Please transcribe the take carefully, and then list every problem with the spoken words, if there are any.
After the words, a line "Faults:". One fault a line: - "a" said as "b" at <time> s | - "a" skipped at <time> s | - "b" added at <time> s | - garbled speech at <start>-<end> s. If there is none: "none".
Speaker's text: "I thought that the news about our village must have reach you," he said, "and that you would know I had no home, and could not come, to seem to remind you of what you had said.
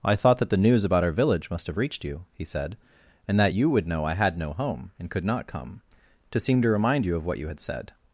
"I thought that the news about our village must have reached you," he said, "and that you would know I had no home, and could not come, to seem to remind you of what you had said.
Faults:
- "reach" said as "reached" at 1.8 s